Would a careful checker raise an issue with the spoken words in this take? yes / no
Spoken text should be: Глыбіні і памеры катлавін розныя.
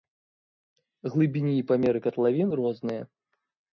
no